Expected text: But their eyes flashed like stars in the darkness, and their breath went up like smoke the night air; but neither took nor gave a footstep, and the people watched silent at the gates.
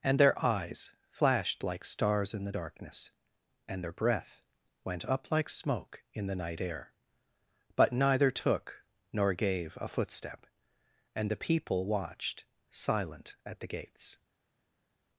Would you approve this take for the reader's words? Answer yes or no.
no